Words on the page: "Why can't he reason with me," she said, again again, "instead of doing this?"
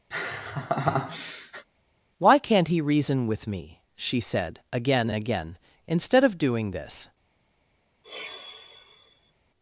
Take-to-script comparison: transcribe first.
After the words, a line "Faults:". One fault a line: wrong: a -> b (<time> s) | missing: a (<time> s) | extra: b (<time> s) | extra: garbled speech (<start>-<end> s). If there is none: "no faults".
"Why can't he reason with me," she said, again again, "instead of doing this?"
Faults:
no faults